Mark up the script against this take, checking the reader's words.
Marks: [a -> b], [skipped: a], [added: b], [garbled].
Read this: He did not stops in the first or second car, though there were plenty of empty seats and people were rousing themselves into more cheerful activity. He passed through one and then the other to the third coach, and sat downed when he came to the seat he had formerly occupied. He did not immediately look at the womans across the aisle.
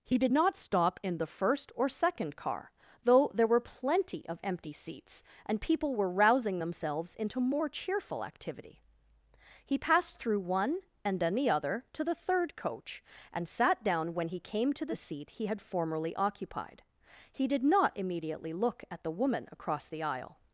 He did not [stops -> stop] in the first or second car, though there were plenty of empty seats and people were rousing themselves into more cheerful activity. He passed through one and then the other to the third coach, and sat [downed -> down] when he came to the seat he had formerly occupied. He did not immediately look at the [womans -> woman] across the aisle.